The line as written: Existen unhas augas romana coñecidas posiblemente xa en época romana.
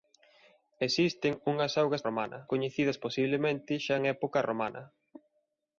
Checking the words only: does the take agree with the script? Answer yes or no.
yes